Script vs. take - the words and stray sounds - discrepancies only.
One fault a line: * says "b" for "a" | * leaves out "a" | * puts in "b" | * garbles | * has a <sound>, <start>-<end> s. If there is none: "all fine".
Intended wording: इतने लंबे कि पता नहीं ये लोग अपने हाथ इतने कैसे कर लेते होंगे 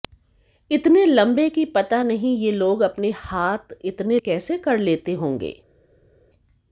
all fine